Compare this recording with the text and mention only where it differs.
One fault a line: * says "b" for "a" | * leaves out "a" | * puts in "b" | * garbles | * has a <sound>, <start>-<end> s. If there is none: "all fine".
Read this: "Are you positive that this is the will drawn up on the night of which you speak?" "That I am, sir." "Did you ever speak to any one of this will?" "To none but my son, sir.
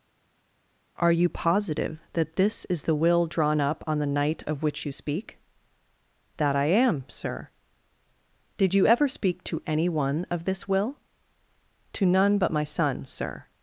all fine